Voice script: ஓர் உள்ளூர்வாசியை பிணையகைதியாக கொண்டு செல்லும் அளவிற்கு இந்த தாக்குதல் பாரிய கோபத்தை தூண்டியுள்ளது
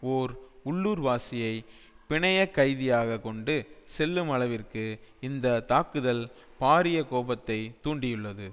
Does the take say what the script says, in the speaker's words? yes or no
yes